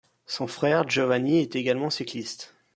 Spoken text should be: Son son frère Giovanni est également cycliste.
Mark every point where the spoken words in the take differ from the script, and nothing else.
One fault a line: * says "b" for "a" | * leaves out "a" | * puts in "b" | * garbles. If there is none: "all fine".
* leaves out "son"